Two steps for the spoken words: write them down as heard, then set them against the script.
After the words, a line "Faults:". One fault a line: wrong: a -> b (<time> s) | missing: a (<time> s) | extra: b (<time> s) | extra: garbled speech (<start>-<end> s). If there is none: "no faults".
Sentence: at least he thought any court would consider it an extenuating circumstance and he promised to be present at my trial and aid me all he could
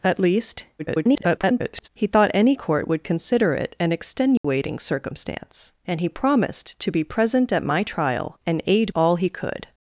at least [garbled] he thought any court would consider it an extenuating circumstance and he promised to be present at my trial and aid all he could
Faults:
extra: garbled speech (0.8-1.9 s)
missing: me (8.9 s)